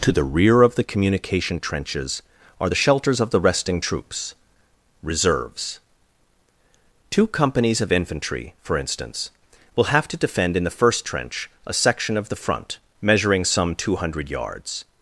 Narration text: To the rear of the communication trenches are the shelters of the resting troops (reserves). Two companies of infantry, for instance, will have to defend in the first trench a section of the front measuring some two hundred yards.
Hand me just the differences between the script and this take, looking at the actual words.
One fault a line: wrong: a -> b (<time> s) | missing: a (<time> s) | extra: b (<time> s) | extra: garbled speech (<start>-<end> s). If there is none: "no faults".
no faults